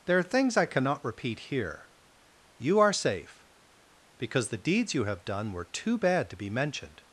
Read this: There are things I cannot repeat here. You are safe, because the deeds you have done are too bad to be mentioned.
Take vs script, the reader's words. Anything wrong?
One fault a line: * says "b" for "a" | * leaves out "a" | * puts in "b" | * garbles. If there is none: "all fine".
* says "were" for "are"